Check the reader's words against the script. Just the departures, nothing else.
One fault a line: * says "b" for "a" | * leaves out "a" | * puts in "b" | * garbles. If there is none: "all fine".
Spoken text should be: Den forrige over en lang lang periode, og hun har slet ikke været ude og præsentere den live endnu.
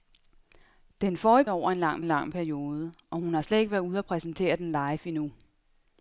all fine